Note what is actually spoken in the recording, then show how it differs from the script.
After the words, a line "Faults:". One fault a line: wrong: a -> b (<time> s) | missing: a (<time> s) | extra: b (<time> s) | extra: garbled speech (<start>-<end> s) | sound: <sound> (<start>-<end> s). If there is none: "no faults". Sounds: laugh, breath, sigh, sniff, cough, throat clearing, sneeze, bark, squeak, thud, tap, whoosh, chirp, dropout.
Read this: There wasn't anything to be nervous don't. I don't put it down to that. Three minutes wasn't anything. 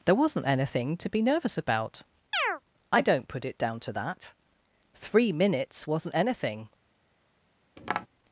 There wasn't anything to be nervous about. I don't put it down to that. Three minutes wasn't anything.
Faults:
wrong: don't -> about (1.6 s)
sound: chirp (2.3-2.6 s)
sound: tap (7.8-8.1 s)